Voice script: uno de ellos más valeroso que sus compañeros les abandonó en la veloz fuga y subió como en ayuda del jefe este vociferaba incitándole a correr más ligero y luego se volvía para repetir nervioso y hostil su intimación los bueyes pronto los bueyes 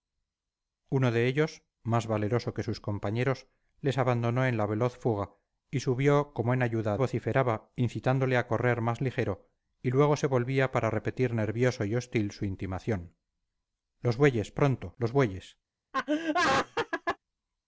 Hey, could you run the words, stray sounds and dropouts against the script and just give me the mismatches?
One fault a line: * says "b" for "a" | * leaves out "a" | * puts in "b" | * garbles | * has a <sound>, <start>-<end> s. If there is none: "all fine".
* leaves out "del jefe este"
* has a laugh, 15.9-17.2 s